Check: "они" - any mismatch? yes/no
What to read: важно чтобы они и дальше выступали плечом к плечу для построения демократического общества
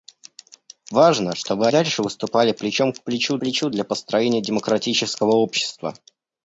yes